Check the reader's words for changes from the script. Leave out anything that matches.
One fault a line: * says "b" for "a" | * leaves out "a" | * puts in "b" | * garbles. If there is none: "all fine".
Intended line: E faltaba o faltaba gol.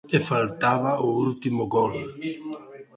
* says "último" for "faltaba"